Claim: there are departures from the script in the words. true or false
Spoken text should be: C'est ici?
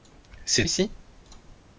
false